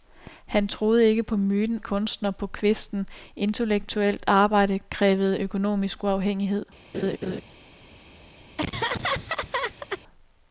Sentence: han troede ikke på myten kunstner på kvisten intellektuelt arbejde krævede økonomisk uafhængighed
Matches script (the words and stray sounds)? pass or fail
fail